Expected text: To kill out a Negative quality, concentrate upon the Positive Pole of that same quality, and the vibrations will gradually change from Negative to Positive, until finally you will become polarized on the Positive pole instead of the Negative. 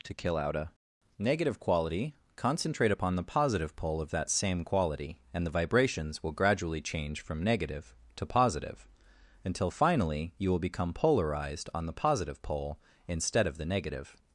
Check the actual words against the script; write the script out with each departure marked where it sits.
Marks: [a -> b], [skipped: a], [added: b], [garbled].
To kill out a Negative quality, concentrate upon the Positive Pole of that same quality, and the vibrations will gradually change from Negative to Positive, until finally you will become polarized on the Positive pole instead of the Negative.